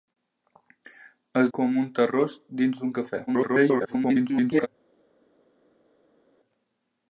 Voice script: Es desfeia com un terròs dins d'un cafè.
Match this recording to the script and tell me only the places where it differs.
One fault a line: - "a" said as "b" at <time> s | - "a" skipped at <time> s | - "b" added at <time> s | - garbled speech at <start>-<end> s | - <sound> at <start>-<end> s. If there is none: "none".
- "desfeia" skipped at 1.5 s
- garbled speech at 3.3-4.7 s